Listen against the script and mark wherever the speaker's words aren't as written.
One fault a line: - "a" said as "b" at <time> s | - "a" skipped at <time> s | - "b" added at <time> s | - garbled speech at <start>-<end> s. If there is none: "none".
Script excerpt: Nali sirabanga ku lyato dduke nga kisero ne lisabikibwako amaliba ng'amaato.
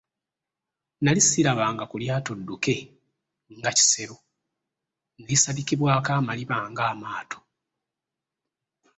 none